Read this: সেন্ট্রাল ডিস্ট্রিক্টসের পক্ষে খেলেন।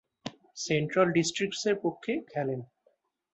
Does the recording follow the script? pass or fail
pass